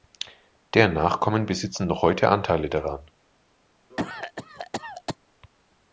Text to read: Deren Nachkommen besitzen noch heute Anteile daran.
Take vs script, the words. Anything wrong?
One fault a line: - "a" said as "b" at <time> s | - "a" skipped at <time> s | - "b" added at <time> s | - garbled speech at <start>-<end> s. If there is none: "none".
none